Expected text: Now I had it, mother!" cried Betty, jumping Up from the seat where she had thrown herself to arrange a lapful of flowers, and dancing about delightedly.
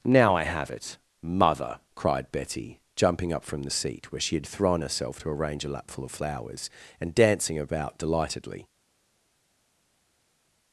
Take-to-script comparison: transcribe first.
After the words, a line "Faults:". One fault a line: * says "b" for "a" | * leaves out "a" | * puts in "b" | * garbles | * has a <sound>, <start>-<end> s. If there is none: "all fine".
Now I have it, mother!" cried Betty, jumping Up from the seat where she had thrown herself to arrange a lapful of flowers, and dancing about delightedly.
Faults:
* says "have" for "had"